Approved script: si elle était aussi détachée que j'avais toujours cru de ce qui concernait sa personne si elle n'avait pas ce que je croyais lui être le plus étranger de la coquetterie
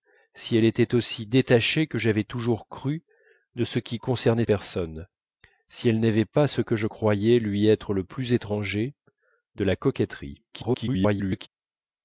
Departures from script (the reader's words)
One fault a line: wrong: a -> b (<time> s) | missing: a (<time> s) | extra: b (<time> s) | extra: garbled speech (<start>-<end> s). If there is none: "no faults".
missing: sa (4.5 s)
extra: garbled speech (10.5-11.5 s)